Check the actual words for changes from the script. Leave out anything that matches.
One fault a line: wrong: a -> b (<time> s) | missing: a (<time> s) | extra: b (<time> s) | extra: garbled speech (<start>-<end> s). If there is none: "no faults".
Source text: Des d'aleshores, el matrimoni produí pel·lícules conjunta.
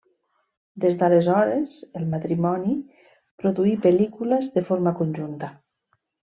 extra: de forma (4.6 s)